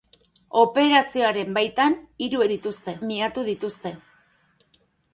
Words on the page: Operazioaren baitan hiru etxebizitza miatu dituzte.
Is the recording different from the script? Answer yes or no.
yes